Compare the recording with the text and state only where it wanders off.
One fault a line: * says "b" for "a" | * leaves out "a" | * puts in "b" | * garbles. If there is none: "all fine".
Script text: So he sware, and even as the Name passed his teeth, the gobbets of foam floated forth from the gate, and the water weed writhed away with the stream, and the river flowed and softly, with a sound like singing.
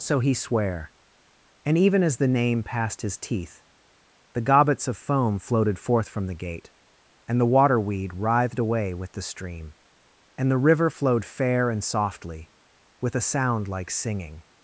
* puts in "fair"